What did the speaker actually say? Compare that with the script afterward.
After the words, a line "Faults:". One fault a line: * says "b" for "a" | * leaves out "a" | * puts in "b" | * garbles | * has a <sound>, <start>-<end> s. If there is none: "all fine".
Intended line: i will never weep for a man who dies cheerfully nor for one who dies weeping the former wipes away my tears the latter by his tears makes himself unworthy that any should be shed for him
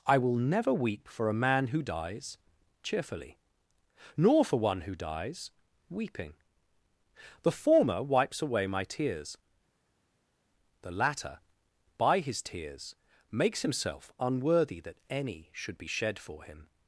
i will never weep for a man who dies cheerfully nor for one who dies weeping the former wipes away my tears the latter by his tears makes himself unworthy that any should be shed for him
Faults:
all fine